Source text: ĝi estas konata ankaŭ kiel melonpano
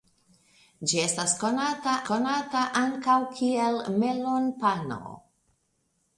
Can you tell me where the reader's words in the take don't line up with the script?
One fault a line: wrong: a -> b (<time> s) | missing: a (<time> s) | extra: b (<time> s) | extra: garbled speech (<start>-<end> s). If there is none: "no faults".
extra: konata (2.1 s)